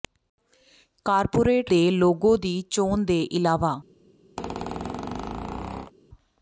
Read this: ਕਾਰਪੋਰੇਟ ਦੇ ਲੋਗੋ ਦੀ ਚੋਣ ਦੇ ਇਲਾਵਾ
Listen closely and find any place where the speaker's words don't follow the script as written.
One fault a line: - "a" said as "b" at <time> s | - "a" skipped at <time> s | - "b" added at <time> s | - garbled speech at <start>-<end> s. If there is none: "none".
none